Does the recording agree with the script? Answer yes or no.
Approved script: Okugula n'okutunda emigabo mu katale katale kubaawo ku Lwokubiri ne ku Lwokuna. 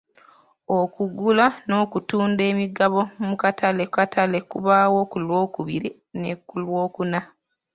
yes